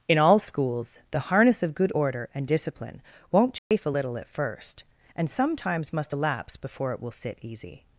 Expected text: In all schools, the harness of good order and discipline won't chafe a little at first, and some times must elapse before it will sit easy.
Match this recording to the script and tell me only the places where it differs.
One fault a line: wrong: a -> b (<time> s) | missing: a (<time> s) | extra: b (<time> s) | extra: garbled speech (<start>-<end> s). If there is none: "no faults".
no faults